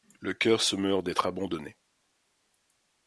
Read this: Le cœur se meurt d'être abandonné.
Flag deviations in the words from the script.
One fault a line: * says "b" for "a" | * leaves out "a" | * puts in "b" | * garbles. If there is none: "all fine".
all fine